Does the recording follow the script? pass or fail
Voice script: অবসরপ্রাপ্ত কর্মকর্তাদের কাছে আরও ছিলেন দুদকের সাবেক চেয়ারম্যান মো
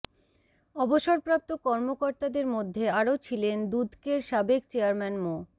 fail